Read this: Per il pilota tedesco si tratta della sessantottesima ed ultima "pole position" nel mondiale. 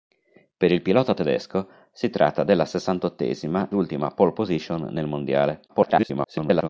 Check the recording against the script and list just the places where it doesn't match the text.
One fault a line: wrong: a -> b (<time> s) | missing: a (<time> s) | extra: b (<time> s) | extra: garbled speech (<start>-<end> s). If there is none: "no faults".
missing: ed (3.7 s)
extra: garbled speech (5.7-6.7 s)